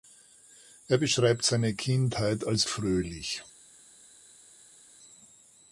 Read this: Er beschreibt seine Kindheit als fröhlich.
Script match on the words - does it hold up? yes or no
yes